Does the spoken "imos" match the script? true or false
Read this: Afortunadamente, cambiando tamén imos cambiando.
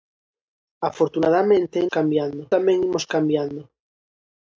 true